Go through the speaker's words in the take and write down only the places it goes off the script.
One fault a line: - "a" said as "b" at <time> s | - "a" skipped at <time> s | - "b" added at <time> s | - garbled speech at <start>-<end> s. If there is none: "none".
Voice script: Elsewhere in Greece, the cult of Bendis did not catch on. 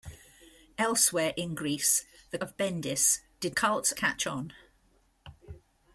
- "cult" skipped at 2.4 s
- "not" said as "cult" at 3.5 s